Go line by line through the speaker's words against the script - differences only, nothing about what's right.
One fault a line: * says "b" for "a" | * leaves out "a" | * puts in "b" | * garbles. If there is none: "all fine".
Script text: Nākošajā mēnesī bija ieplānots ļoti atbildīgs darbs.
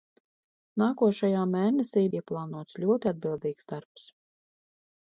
* leaves out "bija"